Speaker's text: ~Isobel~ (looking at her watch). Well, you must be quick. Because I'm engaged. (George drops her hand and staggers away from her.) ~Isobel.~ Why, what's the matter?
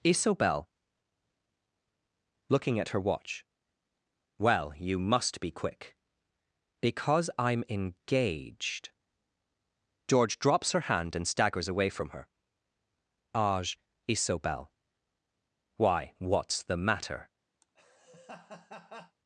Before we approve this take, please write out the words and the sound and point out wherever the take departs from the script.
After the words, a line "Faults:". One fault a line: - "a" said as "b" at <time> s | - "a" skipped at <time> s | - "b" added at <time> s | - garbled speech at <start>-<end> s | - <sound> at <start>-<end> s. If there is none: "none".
~Isobel~ (looking at her watch). Well, you must be quick. Because I'm engaged. (George drops her hand and staggers away from her.) age ~Isobel.~ Why, what's the matter?
Faults:
- "age" added at 13.3 s
- laugh at 17.6-19.2 s